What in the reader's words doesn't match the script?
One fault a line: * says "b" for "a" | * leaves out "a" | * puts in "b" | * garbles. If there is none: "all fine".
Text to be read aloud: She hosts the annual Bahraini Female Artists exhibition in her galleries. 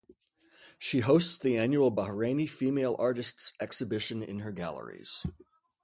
all fine